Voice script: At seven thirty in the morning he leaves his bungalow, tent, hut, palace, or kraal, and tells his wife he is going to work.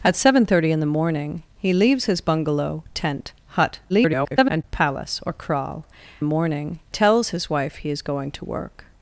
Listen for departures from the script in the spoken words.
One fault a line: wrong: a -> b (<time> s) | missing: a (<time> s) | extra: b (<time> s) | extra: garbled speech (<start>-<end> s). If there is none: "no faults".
extra: garbled speech (3.9-4.6 s)
wrong: and -> morning (6.2 s)